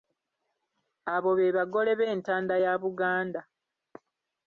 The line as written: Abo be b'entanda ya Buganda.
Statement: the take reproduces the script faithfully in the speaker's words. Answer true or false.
false